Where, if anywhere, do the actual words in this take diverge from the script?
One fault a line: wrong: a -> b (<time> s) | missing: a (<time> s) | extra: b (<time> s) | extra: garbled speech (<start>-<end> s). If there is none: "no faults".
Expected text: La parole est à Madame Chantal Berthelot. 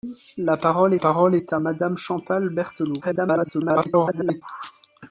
extra: parole (1.0 s)
extra: garbled speech (3.0-4.4 s)